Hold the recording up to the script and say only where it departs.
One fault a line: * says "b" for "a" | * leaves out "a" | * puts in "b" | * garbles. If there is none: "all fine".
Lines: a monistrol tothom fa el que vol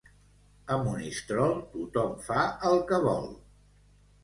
all fine